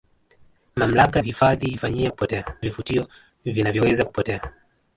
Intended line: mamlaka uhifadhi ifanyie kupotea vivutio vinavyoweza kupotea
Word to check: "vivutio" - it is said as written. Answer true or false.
true